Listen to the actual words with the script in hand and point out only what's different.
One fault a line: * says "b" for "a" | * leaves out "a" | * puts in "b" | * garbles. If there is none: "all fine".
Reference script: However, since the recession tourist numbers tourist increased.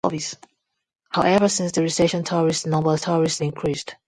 all fine